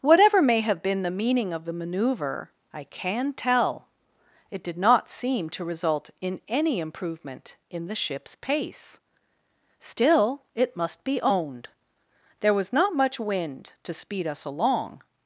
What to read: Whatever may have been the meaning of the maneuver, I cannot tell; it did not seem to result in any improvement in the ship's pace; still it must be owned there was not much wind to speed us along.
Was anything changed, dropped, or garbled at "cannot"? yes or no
yes